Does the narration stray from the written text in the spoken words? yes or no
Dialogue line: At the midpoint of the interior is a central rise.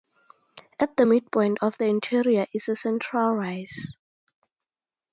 no